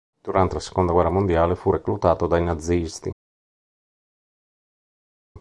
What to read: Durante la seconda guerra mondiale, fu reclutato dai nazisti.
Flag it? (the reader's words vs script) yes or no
no